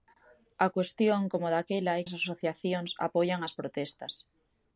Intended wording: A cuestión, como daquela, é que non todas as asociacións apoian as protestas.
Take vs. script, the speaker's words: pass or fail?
fail